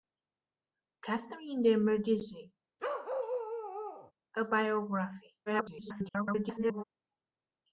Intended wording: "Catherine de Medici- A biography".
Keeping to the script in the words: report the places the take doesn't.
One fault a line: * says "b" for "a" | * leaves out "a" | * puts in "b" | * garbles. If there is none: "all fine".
* garbles